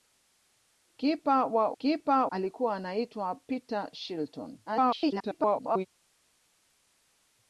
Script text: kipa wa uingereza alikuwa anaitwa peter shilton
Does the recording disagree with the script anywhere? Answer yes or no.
yes